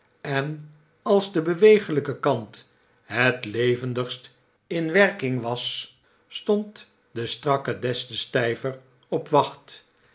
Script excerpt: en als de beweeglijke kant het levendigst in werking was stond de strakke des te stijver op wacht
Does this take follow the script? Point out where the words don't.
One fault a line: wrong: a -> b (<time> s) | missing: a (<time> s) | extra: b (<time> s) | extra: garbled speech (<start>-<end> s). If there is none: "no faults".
no faults